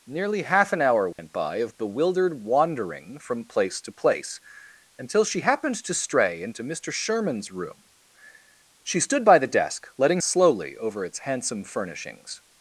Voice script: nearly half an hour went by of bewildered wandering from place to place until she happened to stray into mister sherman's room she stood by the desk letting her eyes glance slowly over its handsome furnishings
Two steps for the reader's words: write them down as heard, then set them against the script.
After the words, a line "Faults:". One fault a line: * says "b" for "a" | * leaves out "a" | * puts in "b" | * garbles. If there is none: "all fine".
nearly half an hour went by of bewildered wandering from place to place until she happened to stray into mister sherman's room she stood by the desk letting slowly over its handsome furnishings
Faults:
* leaves out "her eyes glance"